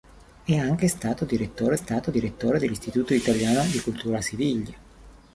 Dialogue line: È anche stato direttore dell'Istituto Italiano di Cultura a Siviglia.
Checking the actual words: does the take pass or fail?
fail